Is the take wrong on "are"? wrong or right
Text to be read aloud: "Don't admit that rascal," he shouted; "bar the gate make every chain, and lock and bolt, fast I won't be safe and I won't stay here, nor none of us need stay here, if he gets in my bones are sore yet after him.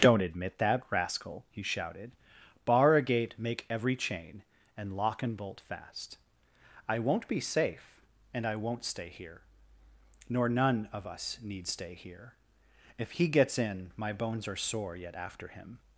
right